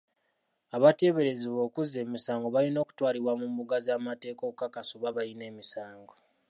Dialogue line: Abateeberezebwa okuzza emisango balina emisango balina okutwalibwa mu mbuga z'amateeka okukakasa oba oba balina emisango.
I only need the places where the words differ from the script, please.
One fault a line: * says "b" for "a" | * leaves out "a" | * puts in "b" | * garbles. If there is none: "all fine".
* leaves out "emisango balina"
* leaves out "oba"